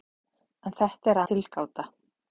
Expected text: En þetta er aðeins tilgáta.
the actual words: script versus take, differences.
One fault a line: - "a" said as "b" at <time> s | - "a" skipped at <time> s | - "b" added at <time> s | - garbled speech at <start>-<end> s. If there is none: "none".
- "aðeins" skipped at 1.2 s